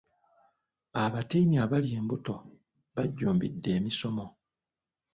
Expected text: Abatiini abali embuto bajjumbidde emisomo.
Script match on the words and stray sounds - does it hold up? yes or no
yes